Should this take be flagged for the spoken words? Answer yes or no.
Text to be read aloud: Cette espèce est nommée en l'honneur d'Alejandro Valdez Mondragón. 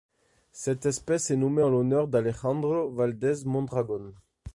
no